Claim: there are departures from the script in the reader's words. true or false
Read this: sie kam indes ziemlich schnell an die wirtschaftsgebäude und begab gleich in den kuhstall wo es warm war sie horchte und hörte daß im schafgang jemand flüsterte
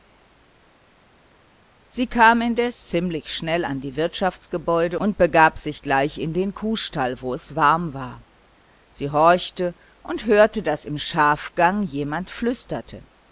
true